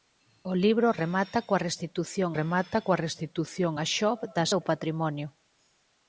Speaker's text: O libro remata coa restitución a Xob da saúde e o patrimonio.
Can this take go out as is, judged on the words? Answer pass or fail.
fail